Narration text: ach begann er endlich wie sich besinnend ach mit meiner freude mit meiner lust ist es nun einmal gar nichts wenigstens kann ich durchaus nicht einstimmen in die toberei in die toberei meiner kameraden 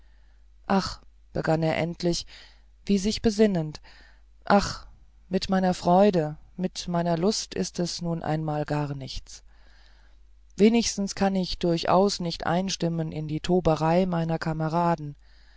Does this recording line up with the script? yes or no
no